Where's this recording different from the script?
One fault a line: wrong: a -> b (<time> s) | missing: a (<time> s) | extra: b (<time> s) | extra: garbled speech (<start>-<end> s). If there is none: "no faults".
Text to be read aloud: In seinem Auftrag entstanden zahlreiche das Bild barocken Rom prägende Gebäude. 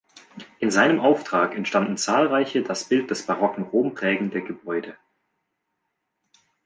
extra: des (3.1 s)